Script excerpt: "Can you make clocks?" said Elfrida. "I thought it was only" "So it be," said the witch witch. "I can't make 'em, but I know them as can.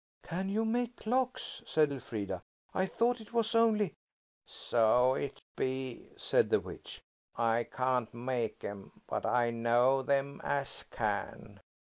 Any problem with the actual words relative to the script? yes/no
yes